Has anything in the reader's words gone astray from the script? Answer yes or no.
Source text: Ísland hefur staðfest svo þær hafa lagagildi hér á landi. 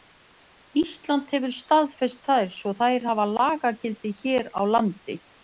yes